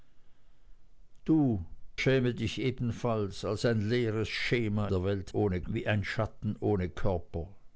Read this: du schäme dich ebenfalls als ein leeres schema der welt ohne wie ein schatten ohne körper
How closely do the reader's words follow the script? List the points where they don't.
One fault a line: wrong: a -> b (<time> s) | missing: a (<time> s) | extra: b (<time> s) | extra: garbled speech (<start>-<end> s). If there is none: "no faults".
no faults